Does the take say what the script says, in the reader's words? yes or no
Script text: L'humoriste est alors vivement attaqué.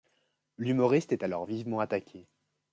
yes